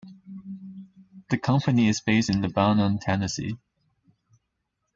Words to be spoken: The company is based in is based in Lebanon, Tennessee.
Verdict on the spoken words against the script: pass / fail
fail